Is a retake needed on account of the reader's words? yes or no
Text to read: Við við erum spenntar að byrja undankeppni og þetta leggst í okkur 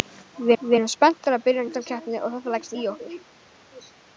no